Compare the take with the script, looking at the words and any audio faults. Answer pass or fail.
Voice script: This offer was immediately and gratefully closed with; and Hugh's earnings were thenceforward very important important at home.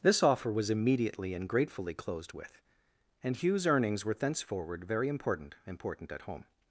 pass